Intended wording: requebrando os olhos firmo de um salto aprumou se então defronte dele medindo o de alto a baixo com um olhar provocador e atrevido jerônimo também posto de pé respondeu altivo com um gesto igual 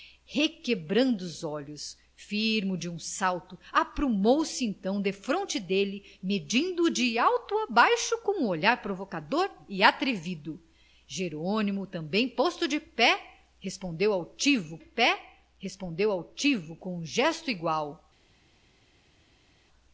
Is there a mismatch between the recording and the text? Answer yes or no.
yes